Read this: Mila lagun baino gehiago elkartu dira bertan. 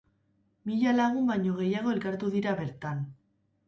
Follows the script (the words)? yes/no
yes